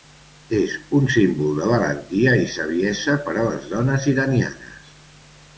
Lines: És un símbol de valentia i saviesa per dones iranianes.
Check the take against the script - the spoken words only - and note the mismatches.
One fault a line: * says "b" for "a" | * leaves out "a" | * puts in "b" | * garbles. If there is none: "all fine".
* puts in "a les"